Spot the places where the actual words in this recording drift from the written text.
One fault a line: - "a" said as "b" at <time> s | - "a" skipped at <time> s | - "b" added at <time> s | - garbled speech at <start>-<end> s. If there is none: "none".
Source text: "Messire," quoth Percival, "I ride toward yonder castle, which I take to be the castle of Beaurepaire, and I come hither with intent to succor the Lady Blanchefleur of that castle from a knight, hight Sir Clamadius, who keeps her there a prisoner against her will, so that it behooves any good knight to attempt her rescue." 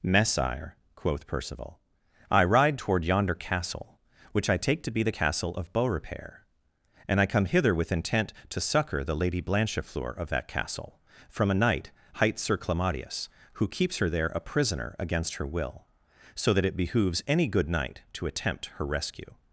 none